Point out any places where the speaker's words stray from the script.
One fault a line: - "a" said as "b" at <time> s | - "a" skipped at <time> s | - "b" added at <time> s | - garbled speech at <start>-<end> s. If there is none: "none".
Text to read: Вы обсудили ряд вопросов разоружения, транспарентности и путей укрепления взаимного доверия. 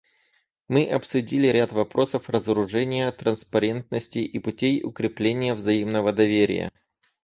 - "Вы" said as "Мы" at 0.7 s